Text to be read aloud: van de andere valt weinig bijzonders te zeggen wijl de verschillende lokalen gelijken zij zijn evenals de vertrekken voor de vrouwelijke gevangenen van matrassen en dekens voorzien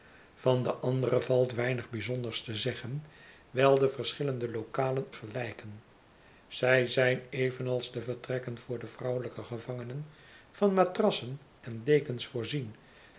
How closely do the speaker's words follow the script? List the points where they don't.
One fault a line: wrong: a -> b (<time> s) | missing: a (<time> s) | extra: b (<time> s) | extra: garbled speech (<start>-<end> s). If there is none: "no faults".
no faults